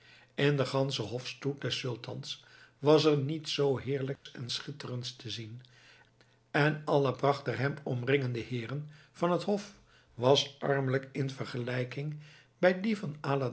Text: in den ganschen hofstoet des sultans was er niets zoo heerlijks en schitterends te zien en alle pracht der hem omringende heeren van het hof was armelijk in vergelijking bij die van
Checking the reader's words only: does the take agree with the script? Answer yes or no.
yes